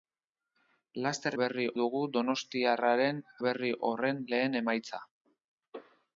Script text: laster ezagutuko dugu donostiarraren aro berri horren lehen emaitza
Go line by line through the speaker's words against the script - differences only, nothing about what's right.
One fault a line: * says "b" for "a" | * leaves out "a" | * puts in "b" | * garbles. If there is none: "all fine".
* says "berri" for "ezagutuko"
* leaves out "aro"